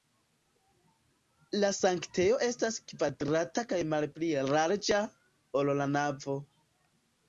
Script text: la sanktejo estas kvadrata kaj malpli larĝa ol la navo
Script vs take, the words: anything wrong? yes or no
no